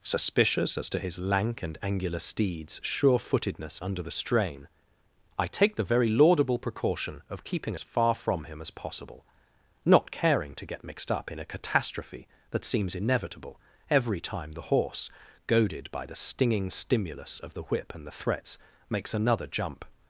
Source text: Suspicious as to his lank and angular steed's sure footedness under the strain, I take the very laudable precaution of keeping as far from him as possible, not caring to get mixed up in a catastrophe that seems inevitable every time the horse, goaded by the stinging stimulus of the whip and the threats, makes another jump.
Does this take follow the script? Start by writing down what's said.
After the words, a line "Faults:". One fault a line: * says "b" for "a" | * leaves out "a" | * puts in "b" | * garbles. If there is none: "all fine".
Suspicious as to his lank and angular steed's sure footedness under the strain, I take the very laudable precaution of keeping as far from him as possible, not caring to get mixed up in a catastrophe that seems inevitable every time the horse, goaded by the stinging stimulus of the whip and the threats, makes another jump.
Faults:
all fine